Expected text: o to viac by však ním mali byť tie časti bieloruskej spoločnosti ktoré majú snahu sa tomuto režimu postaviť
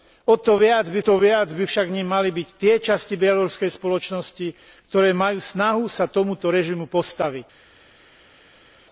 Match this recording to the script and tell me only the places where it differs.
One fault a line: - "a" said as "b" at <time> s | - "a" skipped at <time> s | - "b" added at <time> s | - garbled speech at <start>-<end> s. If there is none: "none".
- "to viac by" added at 1.0 s